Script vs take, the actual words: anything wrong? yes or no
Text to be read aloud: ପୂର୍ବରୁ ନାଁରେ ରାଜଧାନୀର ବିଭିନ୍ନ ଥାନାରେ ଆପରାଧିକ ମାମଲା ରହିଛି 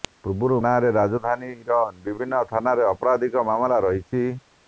no